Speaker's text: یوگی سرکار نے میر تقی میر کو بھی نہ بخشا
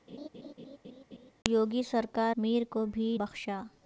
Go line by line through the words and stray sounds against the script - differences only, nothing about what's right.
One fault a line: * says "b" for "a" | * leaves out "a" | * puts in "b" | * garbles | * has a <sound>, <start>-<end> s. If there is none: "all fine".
* has a laugh, 0.1-1.3 s
* leaves out "نے"
* leaves out "تقی میر"
* leaves out "نہ"